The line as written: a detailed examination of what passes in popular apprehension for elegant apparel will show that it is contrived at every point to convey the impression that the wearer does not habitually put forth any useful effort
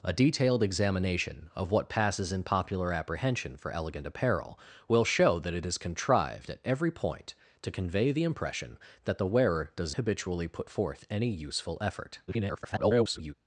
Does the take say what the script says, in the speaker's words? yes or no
no